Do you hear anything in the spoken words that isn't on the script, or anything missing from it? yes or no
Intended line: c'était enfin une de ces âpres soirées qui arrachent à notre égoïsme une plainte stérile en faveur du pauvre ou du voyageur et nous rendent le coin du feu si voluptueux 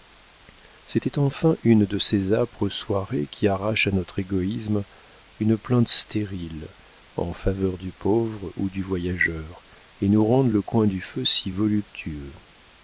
no